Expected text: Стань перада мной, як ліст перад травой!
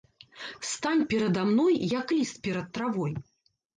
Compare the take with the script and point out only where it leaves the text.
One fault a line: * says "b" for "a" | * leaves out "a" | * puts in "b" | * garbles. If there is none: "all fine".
all fine